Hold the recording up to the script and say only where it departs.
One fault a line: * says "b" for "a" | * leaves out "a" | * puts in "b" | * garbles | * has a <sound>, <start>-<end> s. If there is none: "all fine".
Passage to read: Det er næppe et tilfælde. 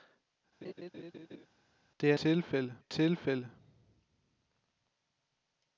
* has a laugh, 0.6-1.5 s
* says "tilfælde" for "næppe"